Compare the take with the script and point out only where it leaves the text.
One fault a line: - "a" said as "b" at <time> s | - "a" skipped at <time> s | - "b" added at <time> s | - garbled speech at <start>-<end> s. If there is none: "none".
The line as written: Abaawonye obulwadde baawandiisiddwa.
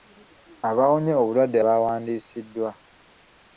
none